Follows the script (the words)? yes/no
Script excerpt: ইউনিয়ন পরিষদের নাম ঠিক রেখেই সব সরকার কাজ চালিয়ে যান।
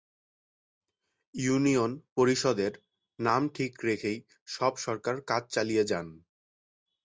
yes